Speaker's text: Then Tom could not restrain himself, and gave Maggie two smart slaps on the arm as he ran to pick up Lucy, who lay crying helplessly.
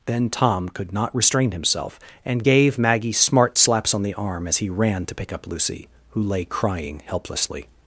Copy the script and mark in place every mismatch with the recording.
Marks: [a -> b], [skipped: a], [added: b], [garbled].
Then Tom could not restrain himself, and gave Maggie [skipped: two] smart slaps on the arm as he ran to pick up Lucy, who lay crying helplessly.